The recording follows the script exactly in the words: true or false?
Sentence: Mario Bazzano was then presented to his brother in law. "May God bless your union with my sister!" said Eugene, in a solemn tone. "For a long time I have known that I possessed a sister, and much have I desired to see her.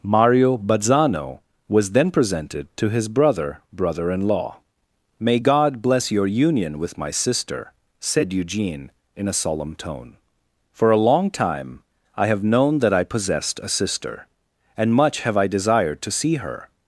false